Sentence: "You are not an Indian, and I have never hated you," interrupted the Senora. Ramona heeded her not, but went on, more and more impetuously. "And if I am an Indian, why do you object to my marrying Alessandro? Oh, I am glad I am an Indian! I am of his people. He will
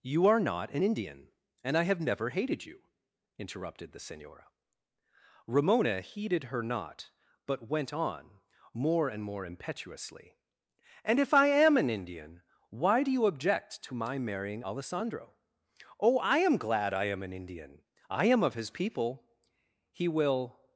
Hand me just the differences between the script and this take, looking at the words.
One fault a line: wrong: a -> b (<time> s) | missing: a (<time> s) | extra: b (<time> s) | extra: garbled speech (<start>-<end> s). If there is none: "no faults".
no faults